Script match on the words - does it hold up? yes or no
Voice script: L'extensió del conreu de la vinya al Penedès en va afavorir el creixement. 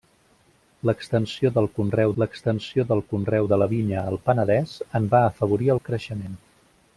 no